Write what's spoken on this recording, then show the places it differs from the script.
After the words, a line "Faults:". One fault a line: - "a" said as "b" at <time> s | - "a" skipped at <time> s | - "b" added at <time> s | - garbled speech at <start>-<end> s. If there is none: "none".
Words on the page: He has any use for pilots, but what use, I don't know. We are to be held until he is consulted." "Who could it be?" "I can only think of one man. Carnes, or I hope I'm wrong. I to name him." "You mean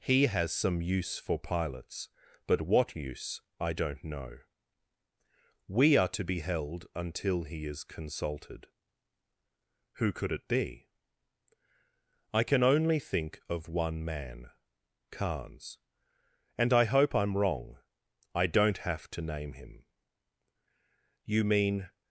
He has some use for pilots, but what use, I don't know. We are to be held until he is consulted." "Who could it be?" "I can only think of one man. Carnes, and I hope I'm wrong. I don't have to name him." "You mean
Faults:
- "any" said as "some" at 0.5 s
- "or" said as "and" at 16.6 s
- "don't have" added at 18.5 s